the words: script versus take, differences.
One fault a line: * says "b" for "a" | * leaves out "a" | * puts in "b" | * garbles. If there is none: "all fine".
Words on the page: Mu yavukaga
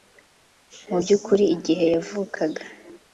* puts in "by'ukuri igihe"